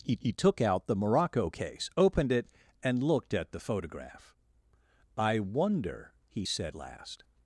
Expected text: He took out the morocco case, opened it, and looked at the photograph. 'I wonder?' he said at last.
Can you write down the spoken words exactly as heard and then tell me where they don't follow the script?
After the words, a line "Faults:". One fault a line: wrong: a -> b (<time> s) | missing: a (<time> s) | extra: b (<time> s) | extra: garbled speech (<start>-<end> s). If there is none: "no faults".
He he took out the morocco case, opened it, and looked at the photograph. 'I wonder?' he said last.
Faults:
extra: he (0.2 s)
missing: at (6.7 s)